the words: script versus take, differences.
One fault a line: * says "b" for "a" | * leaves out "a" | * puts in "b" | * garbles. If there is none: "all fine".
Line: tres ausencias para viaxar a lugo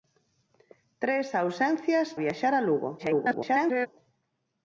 * leaves out "para"
* garbles